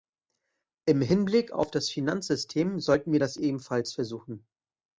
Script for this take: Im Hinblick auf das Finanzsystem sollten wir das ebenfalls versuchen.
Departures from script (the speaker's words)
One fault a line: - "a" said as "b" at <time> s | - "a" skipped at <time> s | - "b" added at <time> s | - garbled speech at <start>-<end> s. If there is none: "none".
none